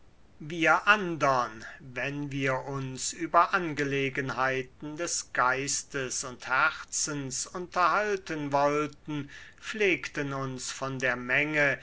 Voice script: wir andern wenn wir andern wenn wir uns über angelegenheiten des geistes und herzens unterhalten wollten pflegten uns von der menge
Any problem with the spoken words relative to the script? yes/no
yes